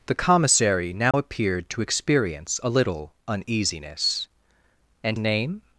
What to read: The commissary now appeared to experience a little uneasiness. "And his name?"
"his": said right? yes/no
no